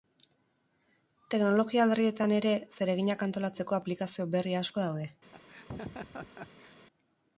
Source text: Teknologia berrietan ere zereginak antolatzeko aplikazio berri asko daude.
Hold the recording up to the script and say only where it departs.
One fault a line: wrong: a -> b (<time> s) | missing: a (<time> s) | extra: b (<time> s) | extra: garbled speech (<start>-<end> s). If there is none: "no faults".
no faults